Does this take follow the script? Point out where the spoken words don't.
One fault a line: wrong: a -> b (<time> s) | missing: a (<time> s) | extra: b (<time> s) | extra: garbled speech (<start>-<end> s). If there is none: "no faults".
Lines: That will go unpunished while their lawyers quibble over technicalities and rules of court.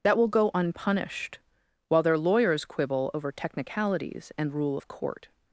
wrong: rules -> rule (4.5 s)